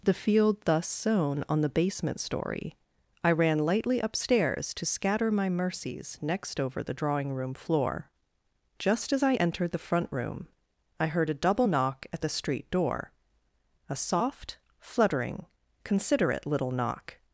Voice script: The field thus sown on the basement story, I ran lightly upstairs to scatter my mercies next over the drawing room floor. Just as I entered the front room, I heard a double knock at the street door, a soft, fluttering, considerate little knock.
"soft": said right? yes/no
yes